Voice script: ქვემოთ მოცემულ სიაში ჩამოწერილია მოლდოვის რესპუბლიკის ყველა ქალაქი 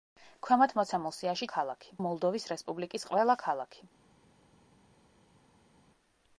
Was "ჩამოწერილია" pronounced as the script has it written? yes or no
no